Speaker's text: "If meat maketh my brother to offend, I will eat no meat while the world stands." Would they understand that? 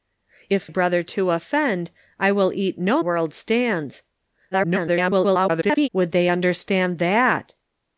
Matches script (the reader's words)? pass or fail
fail